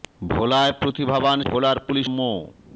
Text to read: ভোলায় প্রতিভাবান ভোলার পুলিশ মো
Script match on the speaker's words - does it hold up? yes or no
yes